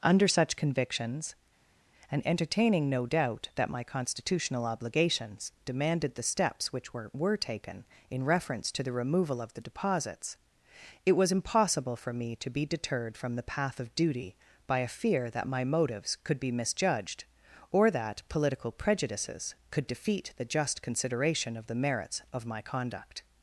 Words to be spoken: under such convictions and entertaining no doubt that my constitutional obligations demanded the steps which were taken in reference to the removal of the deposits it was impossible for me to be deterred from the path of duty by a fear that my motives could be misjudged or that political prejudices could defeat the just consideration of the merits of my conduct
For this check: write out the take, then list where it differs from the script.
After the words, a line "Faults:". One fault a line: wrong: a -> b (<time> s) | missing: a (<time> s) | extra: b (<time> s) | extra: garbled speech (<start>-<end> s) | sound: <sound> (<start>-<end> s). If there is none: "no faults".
under such convictions and entertaining no doubt that my constitutional obligations demanded the steps which were were taken in reference to the removal of the deposits it was impossible for me to be deterred from the path of duty by a fear that my motives could be misjudged or that political prejudices could defeat the just consideration of the merits of my conduct
Faults:
extra: were (7.1 s)